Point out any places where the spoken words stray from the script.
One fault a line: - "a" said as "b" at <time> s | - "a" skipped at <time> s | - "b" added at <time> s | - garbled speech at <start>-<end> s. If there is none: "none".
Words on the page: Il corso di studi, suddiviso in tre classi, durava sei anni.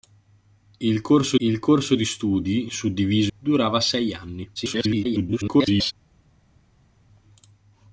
- "il corso" added at 1.4 s
- "in tre classi" skipped at 3.3 s
- garbled speech at 4.6-5.9 s